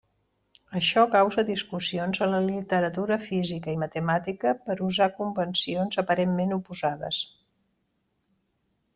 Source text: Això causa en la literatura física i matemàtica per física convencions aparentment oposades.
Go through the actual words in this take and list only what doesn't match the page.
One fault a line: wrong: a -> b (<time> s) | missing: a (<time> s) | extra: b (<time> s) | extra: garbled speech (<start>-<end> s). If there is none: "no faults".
extra: discussions (1.5 s)
wrong: física -> usar (4.9 s)